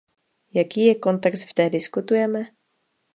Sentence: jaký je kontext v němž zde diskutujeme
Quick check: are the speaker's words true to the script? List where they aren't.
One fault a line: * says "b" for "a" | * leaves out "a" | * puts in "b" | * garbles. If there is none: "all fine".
* leaves out "němž"